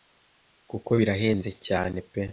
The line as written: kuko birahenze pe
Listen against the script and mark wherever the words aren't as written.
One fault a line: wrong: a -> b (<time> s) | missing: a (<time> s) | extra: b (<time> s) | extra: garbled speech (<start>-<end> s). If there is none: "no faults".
extra: cyane (1.7 s)